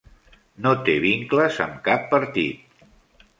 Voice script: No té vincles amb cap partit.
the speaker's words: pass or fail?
pass